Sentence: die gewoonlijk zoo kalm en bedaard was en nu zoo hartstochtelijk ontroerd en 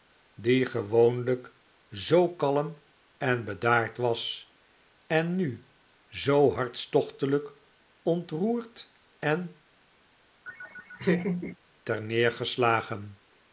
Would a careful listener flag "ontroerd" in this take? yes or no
no